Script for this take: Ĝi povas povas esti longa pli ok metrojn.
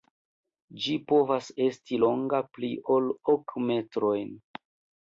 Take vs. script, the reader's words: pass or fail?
fail